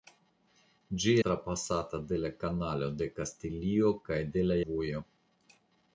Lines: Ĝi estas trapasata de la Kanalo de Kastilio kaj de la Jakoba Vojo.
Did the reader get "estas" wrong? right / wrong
wrong